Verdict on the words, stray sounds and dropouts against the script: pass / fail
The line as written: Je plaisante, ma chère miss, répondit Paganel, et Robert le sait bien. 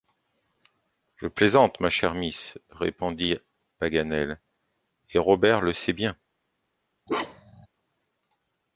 fail